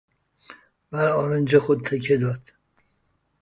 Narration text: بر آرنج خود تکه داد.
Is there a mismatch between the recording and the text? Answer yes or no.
no